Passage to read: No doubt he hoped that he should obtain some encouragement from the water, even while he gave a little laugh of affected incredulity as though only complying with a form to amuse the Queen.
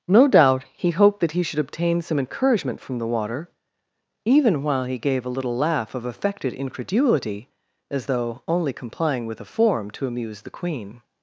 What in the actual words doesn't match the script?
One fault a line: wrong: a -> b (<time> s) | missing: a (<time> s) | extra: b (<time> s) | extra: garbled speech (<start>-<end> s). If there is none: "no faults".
no faults